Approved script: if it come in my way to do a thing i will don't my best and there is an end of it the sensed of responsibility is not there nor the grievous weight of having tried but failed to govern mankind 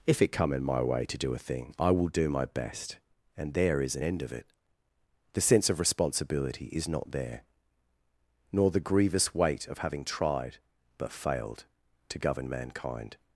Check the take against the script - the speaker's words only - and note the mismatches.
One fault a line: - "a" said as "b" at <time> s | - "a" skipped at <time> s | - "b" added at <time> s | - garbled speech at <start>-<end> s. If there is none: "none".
- "don't" said as "do" at 2.1 s
- "sensed" said as "sense" at 5.4 s